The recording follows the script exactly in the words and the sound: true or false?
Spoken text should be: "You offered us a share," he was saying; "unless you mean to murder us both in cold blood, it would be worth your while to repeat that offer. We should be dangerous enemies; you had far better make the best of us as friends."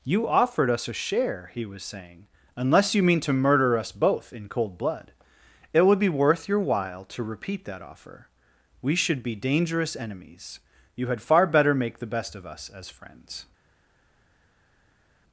true